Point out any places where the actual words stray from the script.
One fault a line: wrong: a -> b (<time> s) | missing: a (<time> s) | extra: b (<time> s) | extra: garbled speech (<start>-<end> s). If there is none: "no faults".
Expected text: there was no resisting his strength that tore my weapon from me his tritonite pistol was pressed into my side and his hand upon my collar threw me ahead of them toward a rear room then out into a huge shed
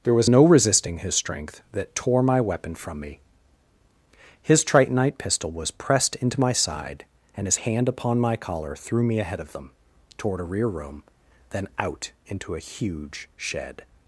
no faults